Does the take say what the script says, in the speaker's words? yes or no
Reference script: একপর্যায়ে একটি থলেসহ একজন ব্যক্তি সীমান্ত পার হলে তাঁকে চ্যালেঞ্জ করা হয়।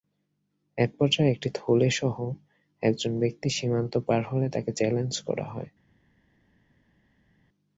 yes